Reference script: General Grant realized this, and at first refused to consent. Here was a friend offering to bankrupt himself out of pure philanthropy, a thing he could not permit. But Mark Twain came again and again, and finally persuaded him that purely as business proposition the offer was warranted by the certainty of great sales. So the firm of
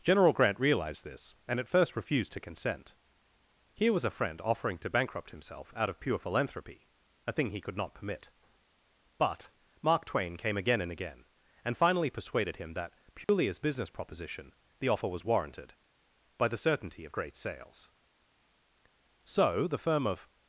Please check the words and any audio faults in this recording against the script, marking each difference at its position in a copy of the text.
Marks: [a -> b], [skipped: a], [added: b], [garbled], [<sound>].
General Grant realized this, and at first refused to consent. Here was a friend offering to bankrupt himself out of pure philanthropy, a thing he could not permit. But Mark Twain came again and again, and finally persuaded him that purely [dropout] as business proposition the offer was warranted by the certainty of great sales. So the firm of